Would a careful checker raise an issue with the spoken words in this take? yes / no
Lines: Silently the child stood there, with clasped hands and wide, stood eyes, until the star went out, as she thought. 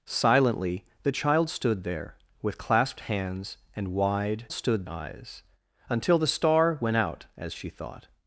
no